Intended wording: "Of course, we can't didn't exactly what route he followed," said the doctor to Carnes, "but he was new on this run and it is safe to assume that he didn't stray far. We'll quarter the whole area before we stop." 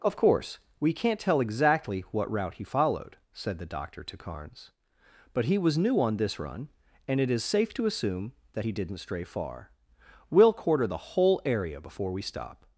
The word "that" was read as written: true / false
true